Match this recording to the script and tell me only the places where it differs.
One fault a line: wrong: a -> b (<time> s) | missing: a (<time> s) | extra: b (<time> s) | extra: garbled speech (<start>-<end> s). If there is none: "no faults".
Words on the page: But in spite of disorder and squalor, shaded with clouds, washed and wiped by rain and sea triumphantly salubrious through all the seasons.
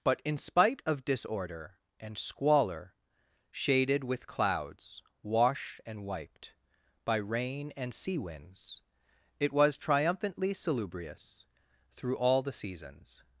extra: winds it was (8.2 s)